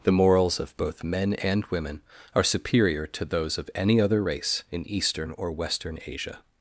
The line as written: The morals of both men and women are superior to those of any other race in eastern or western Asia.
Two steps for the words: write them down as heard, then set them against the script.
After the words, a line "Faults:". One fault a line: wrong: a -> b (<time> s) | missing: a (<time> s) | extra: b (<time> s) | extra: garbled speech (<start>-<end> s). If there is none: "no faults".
The morals of both men and women are superior to those of any other race in eastern or western Asia.
Faults:
no faults